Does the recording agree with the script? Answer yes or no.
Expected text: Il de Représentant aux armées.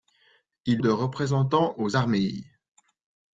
yes